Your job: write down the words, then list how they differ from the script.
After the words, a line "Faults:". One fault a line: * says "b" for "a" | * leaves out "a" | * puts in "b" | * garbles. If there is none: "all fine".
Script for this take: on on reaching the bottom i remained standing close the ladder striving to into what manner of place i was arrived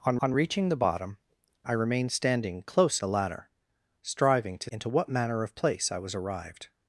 on on reaching the bottom i remained standing close the ladder striving to into what manner of place i was arrived
Faults:
all fine